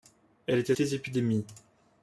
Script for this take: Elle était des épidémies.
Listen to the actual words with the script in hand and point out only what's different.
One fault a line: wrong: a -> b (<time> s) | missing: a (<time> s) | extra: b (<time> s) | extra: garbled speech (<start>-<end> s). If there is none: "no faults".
no faults